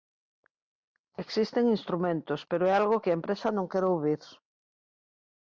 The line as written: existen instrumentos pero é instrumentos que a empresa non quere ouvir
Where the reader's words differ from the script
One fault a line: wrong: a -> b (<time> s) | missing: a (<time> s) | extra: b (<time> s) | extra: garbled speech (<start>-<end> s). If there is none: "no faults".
wrong: instrumentos -> algo (2.8 s)